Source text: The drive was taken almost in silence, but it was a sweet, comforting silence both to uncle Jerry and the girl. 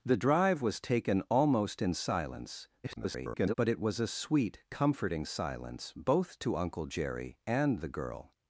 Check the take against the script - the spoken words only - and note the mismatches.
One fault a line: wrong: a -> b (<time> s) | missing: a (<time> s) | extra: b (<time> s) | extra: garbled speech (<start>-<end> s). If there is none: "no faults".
extra: garbled speech (2.8-3.5 s)